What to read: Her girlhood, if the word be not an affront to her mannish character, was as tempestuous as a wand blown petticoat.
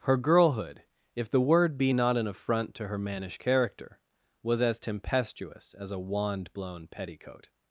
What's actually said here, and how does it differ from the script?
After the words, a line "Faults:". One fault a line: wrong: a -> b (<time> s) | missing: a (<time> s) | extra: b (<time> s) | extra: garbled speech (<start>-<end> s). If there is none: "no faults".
Her girlhood, if the word be not an affront to her mannish character, was as tempestuous as a wand blown petticoat.
Faults:
no faults